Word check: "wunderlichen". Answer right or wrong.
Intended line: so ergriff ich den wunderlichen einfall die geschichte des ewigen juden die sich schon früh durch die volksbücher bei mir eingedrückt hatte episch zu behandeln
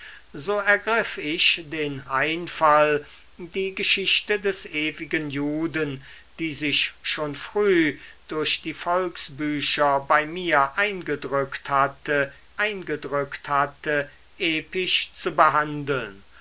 wrong